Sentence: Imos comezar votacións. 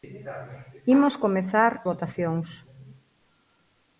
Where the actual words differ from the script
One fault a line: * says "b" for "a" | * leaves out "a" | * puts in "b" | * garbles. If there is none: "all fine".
all fine